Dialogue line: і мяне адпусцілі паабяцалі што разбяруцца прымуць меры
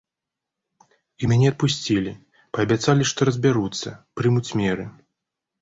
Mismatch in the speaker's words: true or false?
false